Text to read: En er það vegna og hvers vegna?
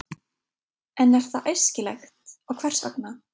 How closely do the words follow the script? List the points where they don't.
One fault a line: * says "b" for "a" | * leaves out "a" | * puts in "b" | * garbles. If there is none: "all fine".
* says "æskilegt" for "vegna"